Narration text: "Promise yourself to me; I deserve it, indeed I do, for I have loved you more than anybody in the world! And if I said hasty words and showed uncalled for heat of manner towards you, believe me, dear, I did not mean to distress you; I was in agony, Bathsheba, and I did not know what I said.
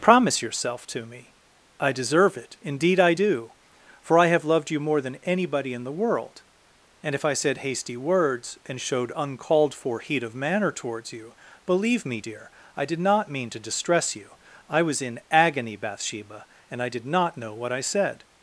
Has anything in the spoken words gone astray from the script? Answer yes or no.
no